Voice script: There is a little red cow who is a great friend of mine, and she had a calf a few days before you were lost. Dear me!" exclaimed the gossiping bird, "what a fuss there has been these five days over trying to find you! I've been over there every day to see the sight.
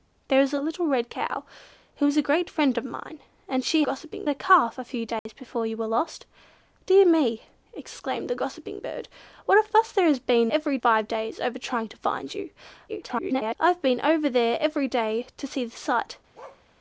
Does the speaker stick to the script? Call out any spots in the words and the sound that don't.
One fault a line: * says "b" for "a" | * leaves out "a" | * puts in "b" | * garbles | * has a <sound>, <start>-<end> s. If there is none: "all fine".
* says "gossiping" for "had"
* has a dropout, 5.2-5.3 s
* says "every" for "these"
* garbles
* has a bark, 16.3-16.6 s